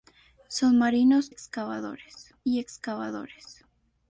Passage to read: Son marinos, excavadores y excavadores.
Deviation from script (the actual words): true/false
false